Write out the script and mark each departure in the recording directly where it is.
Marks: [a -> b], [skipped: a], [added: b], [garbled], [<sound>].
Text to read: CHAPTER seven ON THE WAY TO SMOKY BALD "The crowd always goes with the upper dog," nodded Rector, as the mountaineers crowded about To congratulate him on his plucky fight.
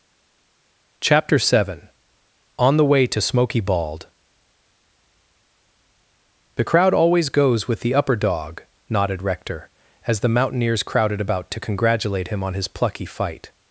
CHAPTER seven ON THE WAY TO SMOKY BALD "The crowd always goes with the upper dog," nodded Rector, as the mountaineers crowded about To congratulate him on his plucky fight.